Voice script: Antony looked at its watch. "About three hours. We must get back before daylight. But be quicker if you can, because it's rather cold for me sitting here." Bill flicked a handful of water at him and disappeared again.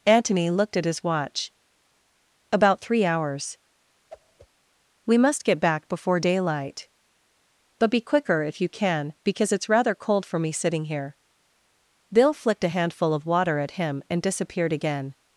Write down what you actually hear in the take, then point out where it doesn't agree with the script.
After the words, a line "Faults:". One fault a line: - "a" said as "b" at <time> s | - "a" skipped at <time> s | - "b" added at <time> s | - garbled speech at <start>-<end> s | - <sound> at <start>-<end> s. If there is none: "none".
Antony looked at his watch. "About three hours. We must get back before daylight. But be quicker if you can, because it's rather cold for me sitting here." Bill flicked a handful of water at him and disappeared again.
Faults:
- "its" said as "his" at 0.8 s
- whoosh at 4.1-4.5 s